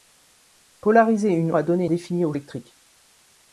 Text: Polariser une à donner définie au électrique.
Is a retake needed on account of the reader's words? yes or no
no